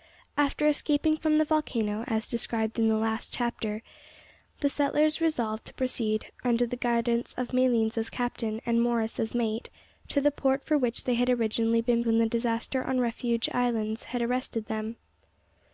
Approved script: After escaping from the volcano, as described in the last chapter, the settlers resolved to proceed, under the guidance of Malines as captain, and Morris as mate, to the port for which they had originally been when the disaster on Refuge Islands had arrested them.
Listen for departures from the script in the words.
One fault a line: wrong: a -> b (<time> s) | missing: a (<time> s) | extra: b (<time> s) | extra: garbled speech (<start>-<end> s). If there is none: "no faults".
no faults